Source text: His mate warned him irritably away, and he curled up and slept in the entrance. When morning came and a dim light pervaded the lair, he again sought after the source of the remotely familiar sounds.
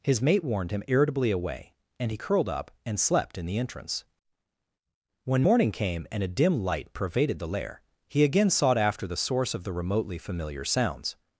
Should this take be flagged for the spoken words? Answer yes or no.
no